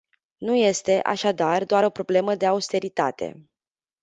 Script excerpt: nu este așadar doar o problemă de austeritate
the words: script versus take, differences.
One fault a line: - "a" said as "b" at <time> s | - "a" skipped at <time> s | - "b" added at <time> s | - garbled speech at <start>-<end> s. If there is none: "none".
none